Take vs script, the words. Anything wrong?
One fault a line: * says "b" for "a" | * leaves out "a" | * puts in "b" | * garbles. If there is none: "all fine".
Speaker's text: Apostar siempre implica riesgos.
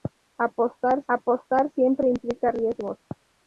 * puts in "apostar"